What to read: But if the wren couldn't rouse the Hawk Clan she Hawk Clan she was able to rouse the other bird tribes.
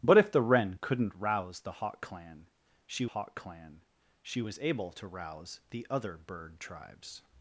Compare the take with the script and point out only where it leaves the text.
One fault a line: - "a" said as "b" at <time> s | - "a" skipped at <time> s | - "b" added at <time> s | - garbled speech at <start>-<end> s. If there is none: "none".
none